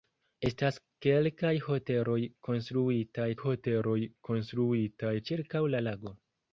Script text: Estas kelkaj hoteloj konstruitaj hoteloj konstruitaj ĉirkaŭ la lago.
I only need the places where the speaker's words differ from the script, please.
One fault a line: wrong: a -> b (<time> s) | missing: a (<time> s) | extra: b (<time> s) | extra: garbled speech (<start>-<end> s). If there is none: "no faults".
no faults